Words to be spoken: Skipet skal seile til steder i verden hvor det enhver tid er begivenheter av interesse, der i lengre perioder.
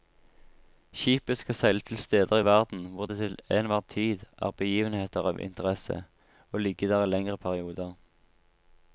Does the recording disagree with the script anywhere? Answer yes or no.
yes